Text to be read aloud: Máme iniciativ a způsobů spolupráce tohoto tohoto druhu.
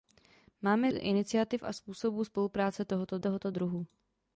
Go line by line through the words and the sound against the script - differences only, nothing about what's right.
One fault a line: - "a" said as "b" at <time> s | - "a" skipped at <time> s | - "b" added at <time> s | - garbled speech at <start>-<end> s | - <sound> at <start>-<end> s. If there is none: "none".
none